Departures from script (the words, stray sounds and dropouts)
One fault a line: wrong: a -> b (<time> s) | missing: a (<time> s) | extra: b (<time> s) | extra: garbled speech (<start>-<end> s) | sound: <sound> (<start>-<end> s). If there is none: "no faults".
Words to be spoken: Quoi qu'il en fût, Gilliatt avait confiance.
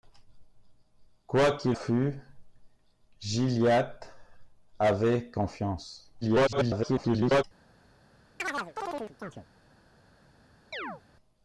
missing: en (1.8 s)
extra: garbled speech (6.2-7.4 s)
sound: chirp (8.4-9.5 s)
sound: chirp (10.7-11.0 s)